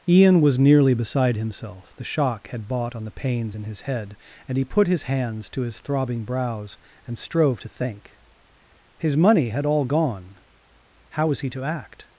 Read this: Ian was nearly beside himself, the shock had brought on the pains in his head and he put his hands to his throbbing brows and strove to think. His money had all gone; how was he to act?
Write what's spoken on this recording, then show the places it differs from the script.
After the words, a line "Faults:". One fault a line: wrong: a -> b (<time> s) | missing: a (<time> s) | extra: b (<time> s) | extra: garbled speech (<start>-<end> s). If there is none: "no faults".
Ian was nearly beside himself, the shock had bought on the pains in his head and he put his hands to his throbbing brows and strove to think. His money had all gone; how was he to act?
Faults:
wrong: brought -> bought (2.7 s)